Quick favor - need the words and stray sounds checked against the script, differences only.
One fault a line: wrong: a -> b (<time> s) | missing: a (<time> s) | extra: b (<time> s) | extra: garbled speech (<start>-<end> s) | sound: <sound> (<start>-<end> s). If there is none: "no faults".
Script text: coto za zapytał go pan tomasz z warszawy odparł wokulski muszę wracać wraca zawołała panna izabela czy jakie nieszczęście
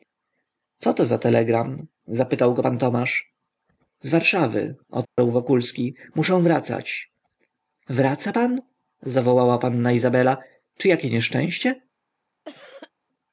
extra: telegram (1.2 s)
sound: dropout (5.0-5.2 s)
extra: pan (8.3 s)
sound: cough (12.4-12.9 s)